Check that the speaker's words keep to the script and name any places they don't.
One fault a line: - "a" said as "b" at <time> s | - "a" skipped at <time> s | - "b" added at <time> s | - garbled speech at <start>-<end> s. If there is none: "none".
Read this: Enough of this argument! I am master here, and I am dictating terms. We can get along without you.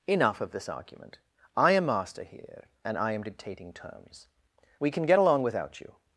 none